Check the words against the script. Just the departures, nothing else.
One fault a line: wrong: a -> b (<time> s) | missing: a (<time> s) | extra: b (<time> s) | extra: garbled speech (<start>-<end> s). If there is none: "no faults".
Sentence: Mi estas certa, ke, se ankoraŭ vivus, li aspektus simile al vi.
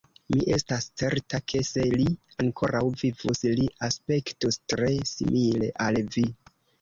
extra: li (1.9 s)
extra: tre (4.7 s)